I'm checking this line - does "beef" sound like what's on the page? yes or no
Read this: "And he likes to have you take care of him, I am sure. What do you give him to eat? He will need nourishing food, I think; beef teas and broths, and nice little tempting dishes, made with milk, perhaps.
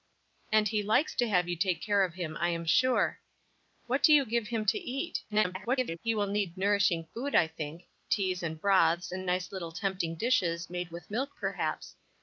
no